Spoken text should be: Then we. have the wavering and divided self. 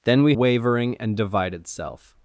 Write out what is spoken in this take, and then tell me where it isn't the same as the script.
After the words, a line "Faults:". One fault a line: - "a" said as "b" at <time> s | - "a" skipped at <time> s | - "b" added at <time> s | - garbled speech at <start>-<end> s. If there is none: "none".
Then we. wavering and divided self.
Faults:
- "have the" skipped at 0.3 s